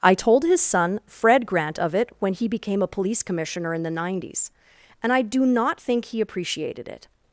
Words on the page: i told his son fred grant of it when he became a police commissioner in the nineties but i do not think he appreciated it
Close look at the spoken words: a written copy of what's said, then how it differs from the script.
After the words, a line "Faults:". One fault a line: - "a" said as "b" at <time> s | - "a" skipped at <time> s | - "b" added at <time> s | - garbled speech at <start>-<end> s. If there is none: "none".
i told his son fred grant of it when he became a police commissioner in the nineties and i do not think he appreciated it
Faults:
- "but" said as "and" at 5.0 s